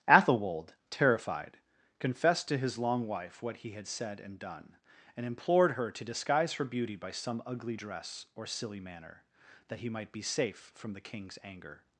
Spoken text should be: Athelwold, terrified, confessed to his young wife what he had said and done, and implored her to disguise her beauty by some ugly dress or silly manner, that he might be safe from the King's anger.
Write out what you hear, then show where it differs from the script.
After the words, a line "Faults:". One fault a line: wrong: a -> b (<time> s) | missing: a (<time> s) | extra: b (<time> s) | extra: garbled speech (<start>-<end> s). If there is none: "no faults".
Athelwold, terrified, confessed to his long wife what he had said and done, and implored her to disguise her beauty by some ugly dress or silly manner, that he might be safe from the King's anger.
Faults:
wrong: young -> long (2.8 s)